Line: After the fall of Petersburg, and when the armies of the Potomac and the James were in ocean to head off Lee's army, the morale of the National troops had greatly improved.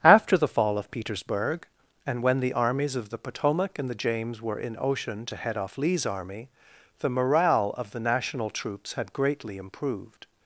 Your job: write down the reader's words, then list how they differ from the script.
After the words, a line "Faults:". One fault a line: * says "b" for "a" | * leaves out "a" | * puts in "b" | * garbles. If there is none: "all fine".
After the fall of Petersburg, and when the armies of the Potomac and the James were in ocean to head off Lee's army, the morale of the National troops had greatly improved.
Faults:
all fine